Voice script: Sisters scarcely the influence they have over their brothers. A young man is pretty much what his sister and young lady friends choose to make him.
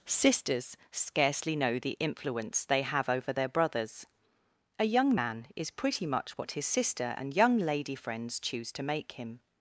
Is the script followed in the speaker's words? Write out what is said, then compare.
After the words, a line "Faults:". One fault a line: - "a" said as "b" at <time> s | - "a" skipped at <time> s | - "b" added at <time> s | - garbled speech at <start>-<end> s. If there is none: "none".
Sisters scarcely know the influence they have over their brothers. A young man is pretty much what his sister and young lady friends choose to make him.
Faults:
- "know" added at 1.6 s